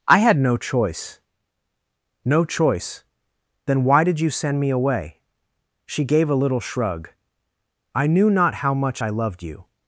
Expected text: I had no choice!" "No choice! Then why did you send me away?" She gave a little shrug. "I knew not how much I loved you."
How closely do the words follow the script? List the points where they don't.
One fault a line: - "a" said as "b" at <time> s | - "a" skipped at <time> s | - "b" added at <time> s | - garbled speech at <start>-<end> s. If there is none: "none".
none